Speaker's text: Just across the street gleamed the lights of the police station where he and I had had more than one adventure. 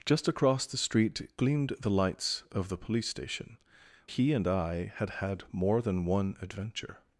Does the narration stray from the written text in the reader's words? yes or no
yes